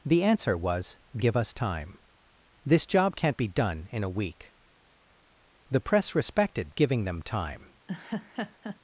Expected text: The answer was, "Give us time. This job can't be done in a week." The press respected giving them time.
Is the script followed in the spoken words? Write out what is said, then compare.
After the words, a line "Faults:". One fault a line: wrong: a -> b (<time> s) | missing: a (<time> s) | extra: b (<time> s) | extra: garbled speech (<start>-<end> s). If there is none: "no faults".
The answer was, "Give us time. This job can't be done in a week." The press respected giving them time.
Faults:
no faults